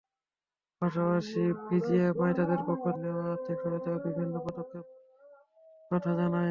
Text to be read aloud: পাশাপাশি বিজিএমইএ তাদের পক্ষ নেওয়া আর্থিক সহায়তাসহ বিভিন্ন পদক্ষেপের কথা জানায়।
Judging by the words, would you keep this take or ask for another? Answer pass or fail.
pass